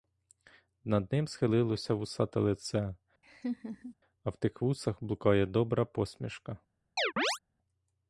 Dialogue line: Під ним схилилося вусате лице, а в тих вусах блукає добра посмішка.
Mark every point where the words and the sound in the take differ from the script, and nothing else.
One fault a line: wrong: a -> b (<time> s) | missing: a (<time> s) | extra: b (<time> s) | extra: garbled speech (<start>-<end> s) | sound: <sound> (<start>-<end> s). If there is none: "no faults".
wrong: Під -> Над (0.8 s)
sound: laugh (3.2-3.9 s)
sound: chirp (7.0-7.4 s)